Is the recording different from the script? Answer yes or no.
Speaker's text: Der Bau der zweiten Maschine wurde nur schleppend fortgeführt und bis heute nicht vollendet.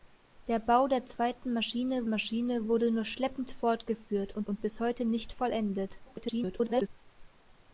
yes